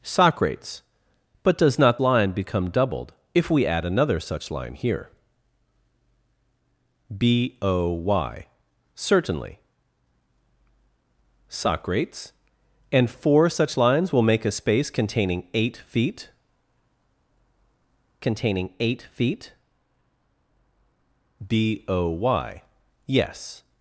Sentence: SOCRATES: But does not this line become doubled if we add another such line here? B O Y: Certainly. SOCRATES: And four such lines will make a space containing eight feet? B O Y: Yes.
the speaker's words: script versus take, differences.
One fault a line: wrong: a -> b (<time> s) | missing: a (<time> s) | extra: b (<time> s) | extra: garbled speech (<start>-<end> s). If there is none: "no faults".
missing: this (2.0 s)
extra: containing eight feet (18.2 s)